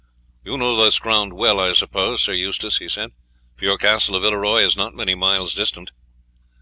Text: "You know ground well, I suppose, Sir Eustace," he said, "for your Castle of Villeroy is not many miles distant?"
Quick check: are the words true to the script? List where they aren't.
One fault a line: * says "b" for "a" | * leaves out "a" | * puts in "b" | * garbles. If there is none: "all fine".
* puts in "this"